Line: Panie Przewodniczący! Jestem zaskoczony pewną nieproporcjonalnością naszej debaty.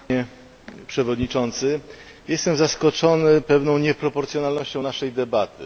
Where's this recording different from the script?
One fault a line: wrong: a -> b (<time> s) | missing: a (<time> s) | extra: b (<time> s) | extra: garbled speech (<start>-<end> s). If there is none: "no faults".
no faults